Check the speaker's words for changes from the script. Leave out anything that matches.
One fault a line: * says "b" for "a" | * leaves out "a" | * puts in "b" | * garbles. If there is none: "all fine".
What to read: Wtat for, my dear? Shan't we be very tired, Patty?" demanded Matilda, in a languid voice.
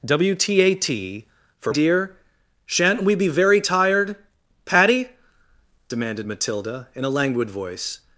* leaves out "my"